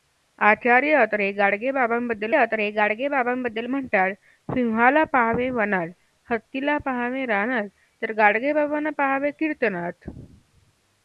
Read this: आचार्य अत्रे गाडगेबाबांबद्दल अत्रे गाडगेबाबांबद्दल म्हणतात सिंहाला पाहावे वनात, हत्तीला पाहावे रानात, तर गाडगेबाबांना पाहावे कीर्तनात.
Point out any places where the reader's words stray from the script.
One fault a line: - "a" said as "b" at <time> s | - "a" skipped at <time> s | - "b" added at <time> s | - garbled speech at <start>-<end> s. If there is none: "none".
none